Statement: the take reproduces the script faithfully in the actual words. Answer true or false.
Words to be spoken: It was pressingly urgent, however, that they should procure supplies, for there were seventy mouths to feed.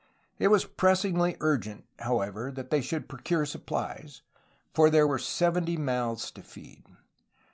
true